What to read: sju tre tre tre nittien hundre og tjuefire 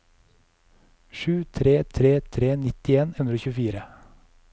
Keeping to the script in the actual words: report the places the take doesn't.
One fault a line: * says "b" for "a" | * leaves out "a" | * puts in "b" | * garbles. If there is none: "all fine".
all fine